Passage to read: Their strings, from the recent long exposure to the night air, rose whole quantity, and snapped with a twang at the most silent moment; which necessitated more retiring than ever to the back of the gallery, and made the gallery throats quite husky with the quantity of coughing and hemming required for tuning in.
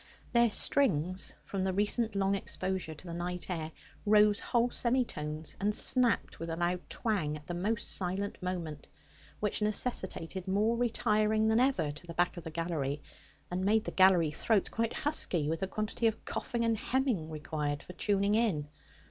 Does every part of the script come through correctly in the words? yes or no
no